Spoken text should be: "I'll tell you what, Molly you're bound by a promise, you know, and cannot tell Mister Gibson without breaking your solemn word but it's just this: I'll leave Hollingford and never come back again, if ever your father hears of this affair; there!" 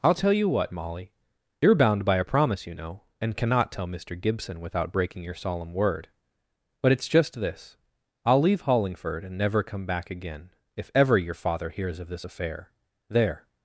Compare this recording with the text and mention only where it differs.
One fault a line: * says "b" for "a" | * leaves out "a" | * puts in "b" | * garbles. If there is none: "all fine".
all fine